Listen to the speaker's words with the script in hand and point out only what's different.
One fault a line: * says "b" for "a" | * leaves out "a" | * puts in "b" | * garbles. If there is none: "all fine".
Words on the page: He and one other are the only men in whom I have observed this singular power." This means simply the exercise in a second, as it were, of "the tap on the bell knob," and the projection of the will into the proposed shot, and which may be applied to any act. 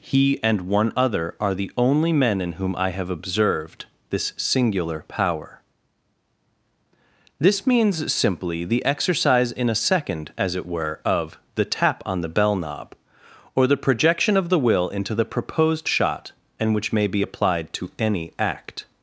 * says "or" for "and"